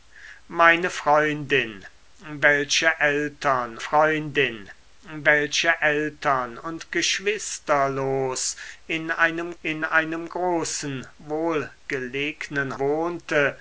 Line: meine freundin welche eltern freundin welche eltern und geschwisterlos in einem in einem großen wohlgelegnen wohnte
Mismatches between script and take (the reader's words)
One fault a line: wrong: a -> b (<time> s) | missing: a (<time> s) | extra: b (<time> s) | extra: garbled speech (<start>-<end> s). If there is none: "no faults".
no faults